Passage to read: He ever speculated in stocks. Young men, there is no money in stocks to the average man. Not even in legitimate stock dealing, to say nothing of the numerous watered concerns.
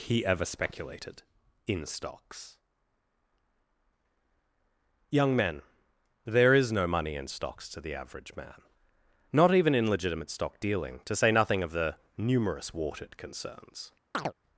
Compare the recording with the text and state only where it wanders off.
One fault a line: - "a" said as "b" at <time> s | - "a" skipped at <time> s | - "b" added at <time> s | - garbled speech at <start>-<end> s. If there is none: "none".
none